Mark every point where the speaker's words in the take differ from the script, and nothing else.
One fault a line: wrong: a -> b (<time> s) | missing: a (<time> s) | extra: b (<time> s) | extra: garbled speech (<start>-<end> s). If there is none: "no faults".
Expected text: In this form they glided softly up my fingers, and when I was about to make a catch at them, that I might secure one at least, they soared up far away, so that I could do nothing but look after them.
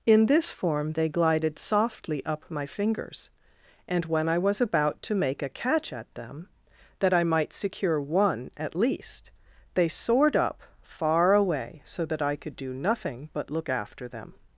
no faults